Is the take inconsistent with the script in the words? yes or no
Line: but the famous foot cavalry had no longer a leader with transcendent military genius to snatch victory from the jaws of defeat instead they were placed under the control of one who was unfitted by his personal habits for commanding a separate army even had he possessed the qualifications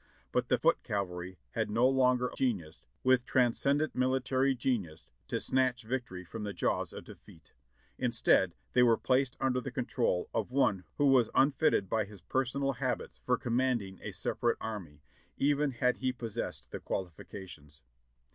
yes